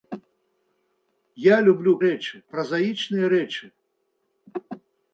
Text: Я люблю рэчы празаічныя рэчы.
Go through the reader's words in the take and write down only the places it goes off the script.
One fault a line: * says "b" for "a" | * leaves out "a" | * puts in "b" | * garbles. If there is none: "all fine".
all fine